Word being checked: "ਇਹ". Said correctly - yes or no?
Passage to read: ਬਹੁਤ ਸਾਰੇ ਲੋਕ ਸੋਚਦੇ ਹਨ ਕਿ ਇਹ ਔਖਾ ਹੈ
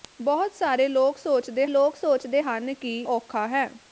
no